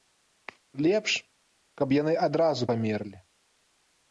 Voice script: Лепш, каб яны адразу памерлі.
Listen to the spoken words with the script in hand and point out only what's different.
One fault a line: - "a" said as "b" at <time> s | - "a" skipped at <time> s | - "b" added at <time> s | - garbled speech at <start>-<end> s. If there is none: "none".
none